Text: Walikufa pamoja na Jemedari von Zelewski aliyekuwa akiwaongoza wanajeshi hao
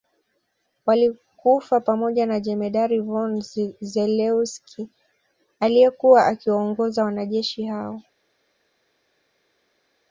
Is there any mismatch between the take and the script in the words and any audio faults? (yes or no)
no